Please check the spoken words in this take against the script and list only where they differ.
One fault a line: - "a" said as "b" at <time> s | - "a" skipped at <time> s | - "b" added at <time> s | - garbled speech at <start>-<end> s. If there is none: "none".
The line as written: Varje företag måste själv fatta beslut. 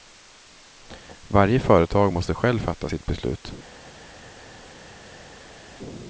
- "sitt" added at 2.9 s